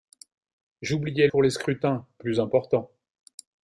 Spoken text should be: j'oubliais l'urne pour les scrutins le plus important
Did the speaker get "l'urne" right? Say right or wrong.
wrong